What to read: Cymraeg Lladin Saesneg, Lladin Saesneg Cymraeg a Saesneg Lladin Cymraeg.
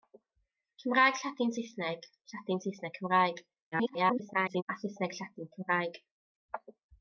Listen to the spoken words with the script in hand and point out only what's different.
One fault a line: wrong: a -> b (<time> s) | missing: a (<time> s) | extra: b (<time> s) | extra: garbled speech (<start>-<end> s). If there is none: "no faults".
extra: garbled speech (3.7-4.6 s)